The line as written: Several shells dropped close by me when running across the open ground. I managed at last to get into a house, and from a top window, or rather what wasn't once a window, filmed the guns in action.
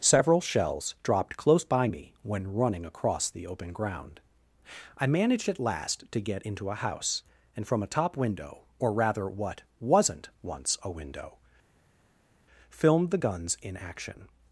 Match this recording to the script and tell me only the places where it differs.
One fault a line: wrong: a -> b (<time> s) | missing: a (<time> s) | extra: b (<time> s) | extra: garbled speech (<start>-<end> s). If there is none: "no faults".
no faults